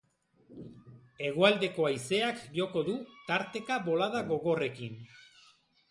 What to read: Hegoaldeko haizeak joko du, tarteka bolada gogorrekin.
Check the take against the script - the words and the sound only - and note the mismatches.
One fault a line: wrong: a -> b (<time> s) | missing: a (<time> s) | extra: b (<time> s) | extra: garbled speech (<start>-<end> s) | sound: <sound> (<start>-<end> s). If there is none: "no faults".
no faults